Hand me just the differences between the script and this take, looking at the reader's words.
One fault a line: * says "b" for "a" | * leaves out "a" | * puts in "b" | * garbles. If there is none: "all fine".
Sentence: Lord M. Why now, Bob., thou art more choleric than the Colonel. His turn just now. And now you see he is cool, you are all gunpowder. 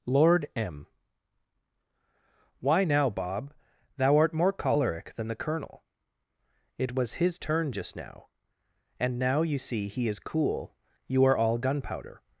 * puts in "It was"